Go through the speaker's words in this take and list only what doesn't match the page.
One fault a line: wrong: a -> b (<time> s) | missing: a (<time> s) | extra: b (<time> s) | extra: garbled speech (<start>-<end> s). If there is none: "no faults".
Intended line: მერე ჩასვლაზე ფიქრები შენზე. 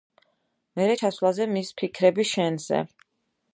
extra: მის (1.5 s)